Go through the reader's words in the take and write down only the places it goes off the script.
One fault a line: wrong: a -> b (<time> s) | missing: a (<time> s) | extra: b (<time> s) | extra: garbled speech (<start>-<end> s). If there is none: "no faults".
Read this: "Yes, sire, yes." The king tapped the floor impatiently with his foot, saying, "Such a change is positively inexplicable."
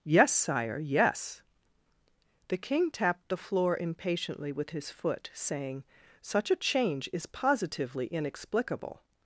no faults